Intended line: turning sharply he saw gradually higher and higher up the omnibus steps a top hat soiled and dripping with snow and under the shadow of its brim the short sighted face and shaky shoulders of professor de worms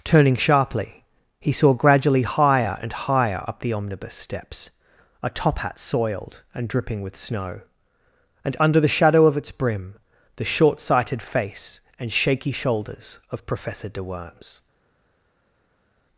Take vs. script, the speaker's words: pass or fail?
pass